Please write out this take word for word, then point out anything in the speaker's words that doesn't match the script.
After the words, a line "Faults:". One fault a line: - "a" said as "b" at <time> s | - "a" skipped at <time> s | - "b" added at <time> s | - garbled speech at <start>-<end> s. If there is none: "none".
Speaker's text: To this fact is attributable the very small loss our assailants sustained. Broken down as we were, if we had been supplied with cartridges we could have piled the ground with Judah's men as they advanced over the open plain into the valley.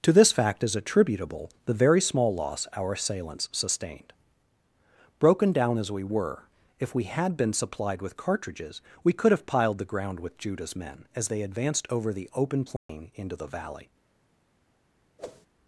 To this fact is attributable the very small loss our assailants sustained. Broken down as we were, if we had been supplied with cartridges we could have piled the ground with Judah's men as they advanced over the open plain into the valley.
Faults:
none